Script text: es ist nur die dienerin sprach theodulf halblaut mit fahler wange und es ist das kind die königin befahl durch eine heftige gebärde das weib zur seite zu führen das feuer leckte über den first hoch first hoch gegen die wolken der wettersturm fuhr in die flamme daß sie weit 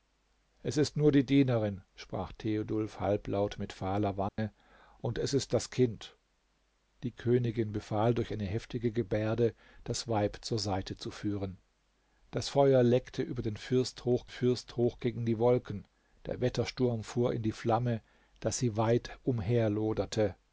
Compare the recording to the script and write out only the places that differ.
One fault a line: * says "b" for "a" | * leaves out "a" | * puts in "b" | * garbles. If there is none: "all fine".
all fine